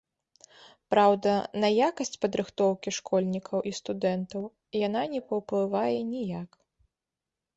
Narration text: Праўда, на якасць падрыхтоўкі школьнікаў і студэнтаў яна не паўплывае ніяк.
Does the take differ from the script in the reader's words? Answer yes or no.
no